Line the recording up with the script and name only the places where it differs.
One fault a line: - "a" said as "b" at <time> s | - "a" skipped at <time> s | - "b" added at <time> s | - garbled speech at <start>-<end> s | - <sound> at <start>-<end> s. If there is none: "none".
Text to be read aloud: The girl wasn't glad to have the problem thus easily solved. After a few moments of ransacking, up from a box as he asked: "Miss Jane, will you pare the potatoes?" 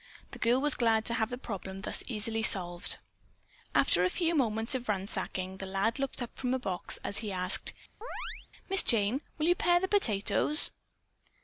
- "wasn't" said as "was" at 0.6 s
- "the lad looked" added at 5.6 s
- chirp at 8.0-8.5 s